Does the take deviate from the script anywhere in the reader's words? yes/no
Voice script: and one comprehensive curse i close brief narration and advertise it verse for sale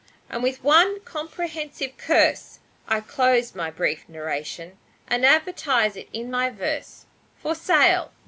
yes